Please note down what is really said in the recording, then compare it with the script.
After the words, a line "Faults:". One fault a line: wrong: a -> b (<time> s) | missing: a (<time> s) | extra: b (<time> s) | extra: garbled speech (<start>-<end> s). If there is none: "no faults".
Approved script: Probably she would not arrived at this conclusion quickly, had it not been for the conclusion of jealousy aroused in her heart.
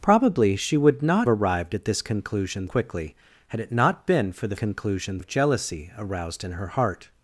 Probably she would not arrived at this conclusion quickly, had it not been for the conclusion of jealousy aroused in her heart.
Faults:
no faults